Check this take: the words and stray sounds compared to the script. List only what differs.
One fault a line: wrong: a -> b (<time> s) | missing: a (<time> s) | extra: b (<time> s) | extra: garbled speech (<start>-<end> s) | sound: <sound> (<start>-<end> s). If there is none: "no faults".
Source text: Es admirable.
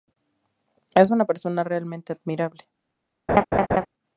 extra: una persona realmente (1.1 s)
sound: laugh (3.3-3.9 s)